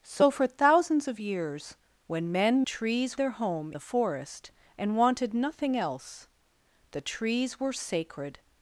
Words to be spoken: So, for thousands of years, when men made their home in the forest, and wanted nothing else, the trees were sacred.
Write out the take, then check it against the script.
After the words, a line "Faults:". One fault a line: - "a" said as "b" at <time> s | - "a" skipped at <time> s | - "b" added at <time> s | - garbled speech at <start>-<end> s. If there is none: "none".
So, for thousands of years, when men trees their home the forest, and wanted nothing else, the trees were sacred.
Faults:
- "made" said as "trees" at 2.6 s
- "in" skipped at 3.7 s